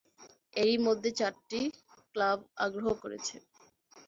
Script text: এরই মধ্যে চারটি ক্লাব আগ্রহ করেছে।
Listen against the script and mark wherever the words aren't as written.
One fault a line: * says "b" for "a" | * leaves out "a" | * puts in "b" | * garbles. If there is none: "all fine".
all fine